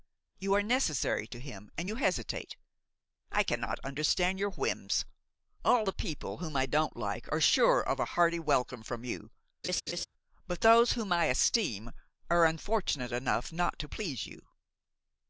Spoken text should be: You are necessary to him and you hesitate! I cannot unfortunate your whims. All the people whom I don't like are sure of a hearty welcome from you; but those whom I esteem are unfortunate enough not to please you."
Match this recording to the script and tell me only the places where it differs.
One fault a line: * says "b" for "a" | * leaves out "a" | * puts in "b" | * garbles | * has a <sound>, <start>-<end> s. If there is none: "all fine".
* says "understand" for "unfortunate"
* has a laugh, 9.6-10.1 s